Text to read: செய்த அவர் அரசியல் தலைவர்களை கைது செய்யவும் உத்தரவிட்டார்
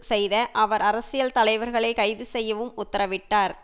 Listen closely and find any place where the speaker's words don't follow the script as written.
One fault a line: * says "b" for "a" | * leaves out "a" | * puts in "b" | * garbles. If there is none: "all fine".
all fine